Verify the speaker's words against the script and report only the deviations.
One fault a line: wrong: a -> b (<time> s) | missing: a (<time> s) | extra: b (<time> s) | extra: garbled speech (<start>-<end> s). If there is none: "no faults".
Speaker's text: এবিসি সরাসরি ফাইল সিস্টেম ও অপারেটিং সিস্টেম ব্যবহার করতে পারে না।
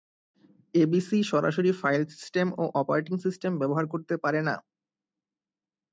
no faults